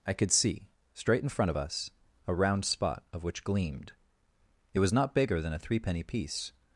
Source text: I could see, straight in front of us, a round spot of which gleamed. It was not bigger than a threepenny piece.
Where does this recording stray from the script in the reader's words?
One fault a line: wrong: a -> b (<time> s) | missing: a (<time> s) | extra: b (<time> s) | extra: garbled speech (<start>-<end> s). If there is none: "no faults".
no faults